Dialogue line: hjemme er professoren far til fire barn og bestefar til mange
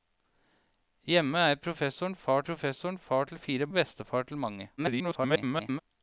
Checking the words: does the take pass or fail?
fail